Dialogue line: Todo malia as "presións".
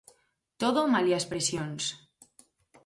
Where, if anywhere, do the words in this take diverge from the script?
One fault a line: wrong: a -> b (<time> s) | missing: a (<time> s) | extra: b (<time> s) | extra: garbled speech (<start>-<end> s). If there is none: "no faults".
no faults